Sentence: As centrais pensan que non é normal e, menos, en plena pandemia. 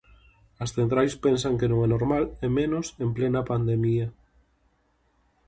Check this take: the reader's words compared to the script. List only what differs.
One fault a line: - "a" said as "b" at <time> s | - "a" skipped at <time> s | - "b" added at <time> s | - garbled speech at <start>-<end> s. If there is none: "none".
none